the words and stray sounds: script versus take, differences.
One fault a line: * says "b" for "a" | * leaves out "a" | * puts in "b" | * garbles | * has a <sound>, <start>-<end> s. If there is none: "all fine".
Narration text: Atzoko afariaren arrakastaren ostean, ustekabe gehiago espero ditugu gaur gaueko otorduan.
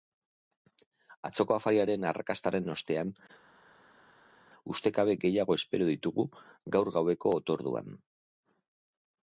all fine